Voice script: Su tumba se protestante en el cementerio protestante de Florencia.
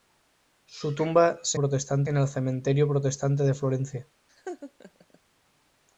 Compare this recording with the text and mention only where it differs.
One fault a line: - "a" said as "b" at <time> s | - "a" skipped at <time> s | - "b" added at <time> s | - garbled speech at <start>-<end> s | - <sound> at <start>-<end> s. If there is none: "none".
- laugh at 4.3-5.2 s